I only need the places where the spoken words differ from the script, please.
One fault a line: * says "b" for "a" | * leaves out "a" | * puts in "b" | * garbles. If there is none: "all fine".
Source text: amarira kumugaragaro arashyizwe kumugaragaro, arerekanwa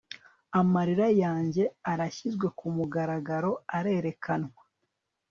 * says "yanjye" for "kumugaragaro"